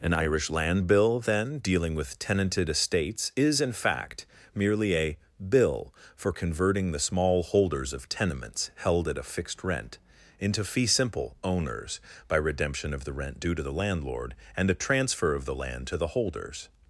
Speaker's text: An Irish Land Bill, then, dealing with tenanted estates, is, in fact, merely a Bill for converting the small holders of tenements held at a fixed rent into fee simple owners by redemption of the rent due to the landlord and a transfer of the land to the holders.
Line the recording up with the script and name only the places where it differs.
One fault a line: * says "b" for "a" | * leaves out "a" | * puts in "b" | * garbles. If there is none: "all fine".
all fine